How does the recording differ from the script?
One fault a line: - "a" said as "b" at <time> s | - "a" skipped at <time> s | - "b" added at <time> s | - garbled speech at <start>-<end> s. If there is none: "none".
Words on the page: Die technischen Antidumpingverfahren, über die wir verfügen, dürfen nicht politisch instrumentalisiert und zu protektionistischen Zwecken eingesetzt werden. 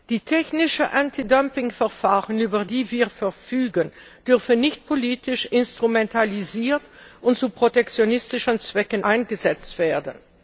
none